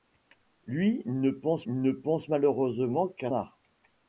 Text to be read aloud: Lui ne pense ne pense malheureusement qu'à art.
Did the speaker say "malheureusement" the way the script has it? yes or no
yes